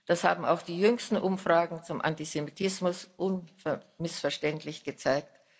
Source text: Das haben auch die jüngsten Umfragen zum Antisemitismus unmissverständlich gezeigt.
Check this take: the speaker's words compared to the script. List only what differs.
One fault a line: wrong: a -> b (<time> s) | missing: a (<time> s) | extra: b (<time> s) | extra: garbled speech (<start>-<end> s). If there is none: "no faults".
no faults